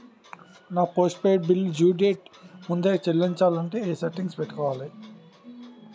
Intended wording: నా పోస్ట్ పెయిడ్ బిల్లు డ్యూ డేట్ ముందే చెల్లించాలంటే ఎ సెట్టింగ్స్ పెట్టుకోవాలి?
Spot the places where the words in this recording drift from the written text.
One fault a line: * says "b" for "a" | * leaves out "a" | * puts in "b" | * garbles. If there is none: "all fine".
all fine